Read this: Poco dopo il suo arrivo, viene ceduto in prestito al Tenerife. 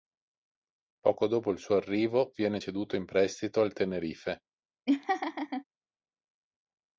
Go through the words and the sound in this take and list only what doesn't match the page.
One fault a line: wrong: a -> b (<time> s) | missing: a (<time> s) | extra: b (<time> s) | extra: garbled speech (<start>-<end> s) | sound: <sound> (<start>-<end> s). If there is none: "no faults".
sound: laugh (4.9-5.6 s)